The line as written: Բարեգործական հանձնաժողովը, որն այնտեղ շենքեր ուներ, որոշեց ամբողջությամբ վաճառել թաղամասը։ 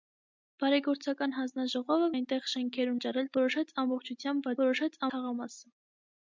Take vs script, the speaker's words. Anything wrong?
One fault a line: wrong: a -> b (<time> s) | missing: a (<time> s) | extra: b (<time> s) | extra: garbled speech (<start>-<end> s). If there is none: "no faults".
missing: որն (2.1 s)
wrong: ուներ -> վաճառել (2.9 s)
wrong: վաճառել -> որոշեց (4.7 s)